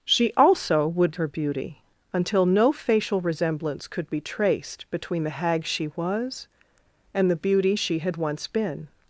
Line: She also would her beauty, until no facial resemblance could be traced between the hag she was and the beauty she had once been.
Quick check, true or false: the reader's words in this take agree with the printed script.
true